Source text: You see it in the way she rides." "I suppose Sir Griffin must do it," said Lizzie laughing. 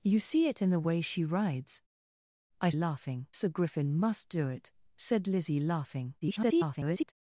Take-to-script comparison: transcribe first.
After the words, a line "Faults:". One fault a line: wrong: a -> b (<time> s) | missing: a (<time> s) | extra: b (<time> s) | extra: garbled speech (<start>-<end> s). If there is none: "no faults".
You see it in the way she rides." "I laughing Sir Griffin must do it," said Lizzie laughing. [garbled]
Faults:
wrong: suppose -> laughing (2.7 s)
extra: garbled speech (6.2-7.1 s)